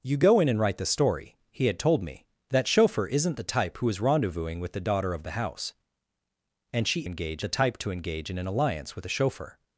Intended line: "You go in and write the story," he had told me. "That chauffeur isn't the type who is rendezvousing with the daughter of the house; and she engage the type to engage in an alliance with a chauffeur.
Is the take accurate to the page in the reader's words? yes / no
yes